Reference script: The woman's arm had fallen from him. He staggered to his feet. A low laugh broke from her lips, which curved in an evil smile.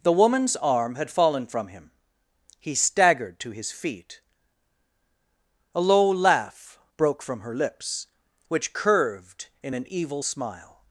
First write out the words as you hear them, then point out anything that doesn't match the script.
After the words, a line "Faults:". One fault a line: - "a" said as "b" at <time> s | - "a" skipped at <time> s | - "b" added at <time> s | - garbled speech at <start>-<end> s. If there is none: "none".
The woman's arm had fallen from him. He staggered to his feet. A low laugh broke from her lips, which curved in an evil smile.
Faults:
none